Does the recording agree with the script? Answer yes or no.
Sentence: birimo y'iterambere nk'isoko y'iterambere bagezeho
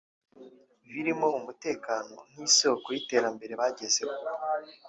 no